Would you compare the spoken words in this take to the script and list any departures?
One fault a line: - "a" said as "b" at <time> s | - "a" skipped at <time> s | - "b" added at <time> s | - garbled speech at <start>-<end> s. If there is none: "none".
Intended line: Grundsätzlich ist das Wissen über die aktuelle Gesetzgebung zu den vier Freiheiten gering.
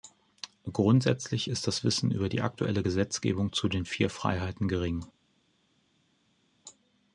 none